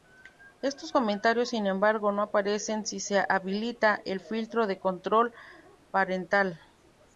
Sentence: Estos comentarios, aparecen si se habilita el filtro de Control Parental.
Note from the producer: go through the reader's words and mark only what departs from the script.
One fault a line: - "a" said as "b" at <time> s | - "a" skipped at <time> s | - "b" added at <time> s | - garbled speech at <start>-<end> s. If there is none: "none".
- "sin embargo no" added at 1.5 s